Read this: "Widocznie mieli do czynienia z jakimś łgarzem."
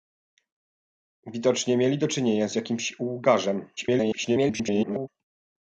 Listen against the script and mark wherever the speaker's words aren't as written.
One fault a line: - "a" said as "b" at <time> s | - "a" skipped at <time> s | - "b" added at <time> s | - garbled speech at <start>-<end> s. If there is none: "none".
- garbled speech at 3.8-5.1 s